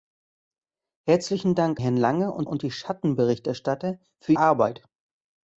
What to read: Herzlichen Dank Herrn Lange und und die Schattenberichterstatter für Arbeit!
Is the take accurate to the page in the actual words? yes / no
yes